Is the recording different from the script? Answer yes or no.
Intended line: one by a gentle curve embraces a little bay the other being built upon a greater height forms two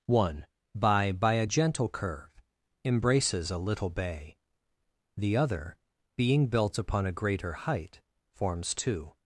yes